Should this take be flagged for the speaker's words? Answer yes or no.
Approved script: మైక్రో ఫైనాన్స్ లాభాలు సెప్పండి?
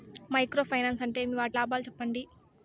yes